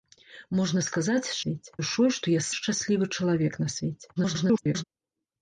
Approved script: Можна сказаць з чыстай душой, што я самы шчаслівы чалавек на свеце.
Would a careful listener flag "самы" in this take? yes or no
yes